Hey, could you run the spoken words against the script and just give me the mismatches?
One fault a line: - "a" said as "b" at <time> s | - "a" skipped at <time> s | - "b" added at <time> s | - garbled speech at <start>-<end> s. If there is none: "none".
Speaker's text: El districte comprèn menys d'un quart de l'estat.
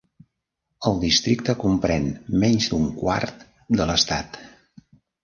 none